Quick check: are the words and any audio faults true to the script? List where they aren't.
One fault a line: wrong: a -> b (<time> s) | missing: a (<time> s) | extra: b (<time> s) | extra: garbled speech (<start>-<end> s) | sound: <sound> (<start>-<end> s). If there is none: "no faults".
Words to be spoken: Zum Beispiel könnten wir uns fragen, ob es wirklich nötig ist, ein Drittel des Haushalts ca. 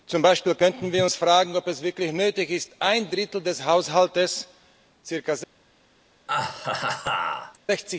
sound: laugh (6.3-7.6 s)